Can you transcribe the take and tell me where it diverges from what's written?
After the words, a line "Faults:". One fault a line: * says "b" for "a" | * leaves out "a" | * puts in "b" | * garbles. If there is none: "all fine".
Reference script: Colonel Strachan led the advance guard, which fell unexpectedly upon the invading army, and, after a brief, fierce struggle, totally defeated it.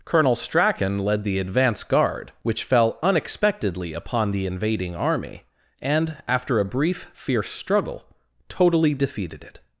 Colonel Strachan led the advance guard, which fell unexpectedly upon the invading army, and, after a brief, fierce struggle, totally defeated it.
Faults:
all fine